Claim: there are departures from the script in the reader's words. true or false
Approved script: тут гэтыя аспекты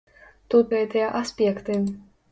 false